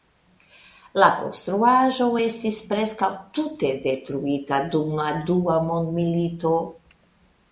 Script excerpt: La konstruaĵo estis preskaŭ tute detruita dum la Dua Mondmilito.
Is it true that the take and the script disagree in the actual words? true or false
false